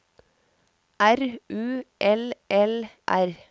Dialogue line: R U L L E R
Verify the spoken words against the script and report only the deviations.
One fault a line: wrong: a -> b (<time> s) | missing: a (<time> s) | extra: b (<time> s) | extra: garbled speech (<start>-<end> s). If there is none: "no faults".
missing: E (2.9 s)